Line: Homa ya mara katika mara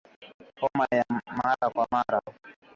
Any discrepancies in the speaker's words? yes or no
yes